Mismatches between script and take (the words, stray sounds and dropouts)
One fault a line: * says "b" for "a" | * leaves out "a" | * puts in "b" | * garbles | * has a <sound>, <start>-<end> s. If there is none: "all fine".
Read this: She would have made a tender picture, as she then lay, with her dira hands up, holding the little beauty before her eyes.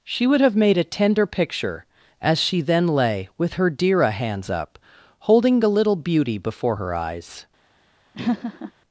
* has a laugh, 8.1-8.7 s